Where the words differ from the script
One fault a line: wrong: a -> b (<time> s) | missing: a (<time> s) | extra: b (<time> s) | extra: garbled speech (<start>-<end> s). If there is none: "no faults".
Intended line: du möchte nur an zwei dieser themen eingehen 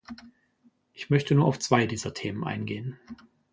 wrong: du -> ich (0.9 s)
wrong: an -> auf (1.4 s)